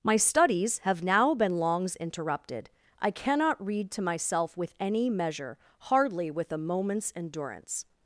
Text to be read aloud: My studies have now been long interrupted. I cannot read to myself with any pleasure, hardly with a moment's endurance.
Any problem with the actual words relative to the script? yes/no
yes